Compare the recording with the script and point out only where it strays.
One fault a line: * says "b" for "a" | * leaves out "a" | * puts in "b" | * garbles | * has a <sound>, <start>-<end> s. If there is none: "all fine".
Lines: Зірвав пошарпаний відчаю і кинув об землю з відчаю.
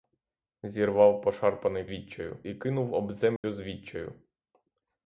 * has a dropout, 3.4-3.4 s